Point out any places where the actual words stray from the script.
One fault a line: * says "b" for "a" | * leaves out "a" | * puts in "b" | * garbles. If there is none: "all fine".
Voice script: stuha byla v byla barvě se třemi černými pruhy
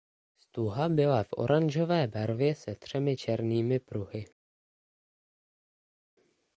* says "oranžové" for "byla"